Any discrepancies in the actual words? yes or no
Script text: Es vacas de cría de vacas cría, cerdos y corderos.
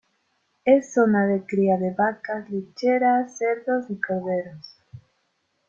yes